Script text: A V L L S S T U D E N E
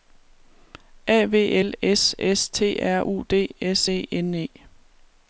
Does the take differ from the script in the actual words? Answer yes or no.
yes